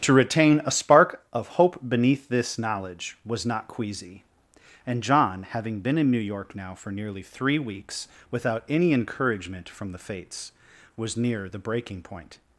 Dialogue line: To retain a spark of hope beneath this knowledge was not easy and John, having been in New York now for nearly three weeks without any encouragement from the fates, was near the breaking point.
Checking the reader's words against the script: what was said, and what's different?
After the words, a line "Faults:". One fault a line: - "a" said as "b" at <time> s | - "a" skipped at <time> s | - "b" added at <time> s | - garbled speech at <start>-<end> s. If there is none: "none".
To retain a spark of hope beneath this knowledge was not queasy and John, having been in New York now for nearly three weeks without any encouragement from the fates, was near the breaking point.
Faults:
- "easy" said as "queasy" at 3.7 s